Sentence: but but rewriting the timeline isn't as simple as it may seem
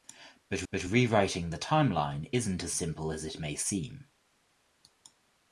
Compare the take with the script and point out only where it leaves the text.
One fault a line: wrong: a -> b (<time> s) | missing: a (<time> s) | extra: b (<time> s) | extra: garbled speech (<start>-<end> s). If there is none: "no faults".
no faults